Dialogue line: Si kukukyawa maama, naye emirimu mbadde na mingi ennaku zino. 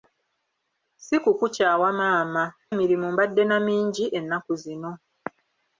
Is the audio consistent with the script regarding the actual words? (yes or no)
no